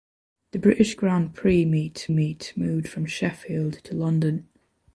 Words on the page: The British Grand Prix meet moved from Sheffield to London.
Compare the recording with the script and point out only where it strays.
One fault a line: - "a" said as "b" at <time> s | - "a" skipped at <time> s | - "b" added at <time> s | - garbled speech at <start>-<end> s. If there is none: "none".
- "meet" added at 2.1 s